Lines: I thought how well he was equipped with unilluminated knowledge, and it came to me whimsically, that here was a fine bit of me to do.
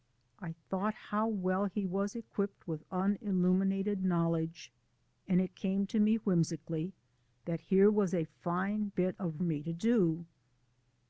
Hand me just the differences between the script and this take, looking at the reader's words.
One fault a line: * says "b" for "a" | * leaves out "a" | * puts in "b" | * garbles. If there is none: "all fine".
all fine